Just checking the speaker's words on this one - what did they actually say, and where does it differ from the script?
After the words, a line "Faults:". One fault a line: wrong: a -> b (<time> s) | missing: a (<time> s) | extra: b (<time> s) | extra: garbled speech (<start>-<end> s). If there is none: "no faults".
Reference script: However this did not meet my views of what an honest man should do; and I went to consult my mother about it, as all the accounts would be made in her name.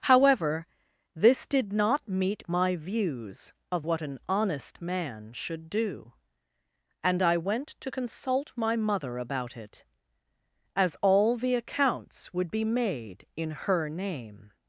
However this did not meet my views of what an honest man should do; and I went to consult my mother about it, as all the accounts would be made in her name.
Faults:
no faults